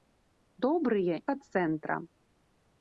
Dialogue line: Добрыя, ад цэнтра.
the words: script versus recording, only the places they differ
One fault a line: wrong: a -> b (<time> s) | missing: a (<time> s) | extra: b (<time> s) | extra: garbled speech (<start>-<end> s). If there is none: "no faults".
no faults